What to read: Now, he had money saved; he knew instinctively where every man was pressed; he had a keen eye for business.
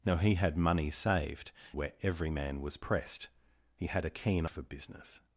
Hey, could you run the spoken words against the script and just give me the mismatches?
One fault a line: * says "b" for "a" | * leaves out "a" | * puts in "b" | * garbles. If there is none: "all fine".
* leaves out "he knew instinctively"
* leaves out "eye"